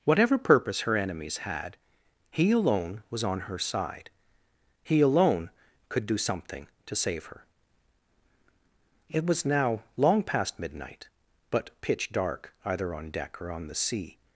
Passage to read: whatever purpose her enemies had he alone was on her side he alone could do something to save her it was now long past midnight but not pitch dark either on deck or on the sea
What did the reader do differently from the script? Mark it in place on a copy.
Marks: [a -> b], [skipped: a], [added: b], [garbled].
whatever purpose her enemies had he alone was on her side he alone could do something to save her it was now long past midnight but [skipped: not] pitch dark either on deck or on the sea